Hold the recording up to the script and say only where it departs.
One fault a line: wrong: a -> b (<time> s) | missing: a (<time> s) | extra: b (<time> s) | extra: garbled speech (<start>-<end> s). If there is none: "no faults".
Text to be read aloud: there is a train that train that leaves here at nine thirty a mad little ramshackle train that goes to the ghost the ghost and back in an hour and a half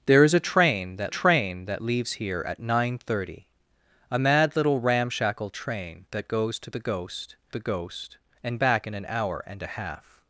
no faults